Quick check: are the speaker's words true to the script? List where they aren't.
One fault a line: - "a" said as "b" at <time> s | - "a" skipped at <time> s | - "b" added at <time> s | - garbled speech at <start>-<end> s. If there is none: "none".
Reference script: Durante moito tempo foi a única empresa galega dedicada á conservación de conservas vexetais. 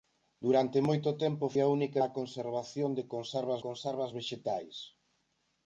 - "foi" skipped at 1.4 s
- "empresa galega dedicada" skipped at 2.0 s
- "conservas" added at 3.6 s